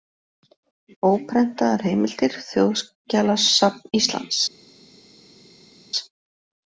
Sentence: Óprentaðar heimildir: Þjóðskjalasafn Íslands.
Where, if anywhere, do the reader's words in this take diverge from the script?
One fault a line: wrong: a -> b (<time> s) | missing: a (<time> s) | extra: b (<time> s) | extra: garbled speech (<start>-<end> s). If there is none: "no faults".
no faults